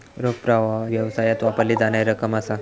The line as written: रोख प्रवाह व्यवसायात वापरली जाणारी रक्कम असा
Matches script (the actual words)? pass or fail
pass